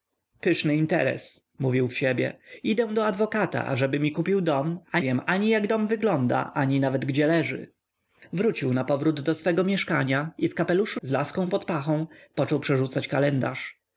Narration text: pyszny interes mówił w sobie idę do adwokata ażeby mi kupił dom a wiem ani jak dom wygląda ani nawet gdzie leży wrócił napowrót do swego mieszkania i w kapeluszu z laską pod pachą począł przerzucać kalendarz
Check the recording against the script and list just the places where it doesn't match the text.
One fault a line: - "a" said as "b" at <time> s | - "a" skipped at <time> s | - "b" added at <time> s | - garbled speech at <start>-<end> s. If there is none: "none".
none